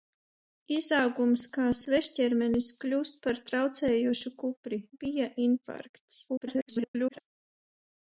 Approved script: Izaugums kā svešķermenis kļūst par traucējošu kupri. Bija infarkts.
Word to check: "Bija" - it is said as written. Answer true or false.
true